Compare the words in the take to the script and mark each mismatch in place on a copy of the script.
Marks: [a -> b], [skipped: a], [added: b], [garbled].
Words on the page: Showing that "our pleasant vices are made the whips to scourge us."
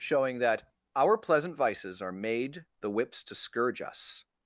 Showing that "our pleasant vices are made the whips to scourge us."